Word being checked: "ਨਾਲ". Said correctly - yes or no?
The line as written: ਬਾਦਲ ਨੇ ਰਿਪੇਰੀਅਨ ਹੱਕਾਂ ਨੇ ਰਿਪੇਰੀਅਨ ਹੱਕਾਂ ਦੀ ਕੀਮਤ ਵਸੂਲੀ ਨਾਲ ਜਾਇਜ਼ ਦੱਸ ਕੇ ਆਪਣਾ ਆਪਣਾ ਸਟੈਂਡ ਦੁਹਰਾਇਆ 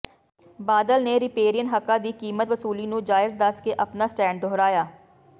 no